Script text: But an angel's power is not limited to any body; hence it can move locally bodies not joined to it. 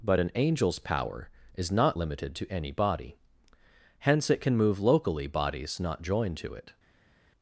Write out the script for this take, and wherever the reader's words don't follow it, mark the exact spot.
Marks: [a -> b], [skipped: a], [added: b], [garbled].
But an angel's power is not limited to any body; hence it can move locally bodies not joined to it.